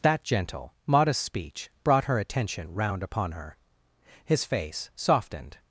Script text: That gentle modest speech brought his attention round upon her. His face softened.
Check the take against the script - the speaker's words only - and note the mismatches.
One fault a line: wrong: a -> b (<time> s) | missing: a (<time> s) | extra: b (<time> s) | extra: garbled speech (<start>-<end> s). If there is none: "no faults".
wrong: his -> her (2.0 s)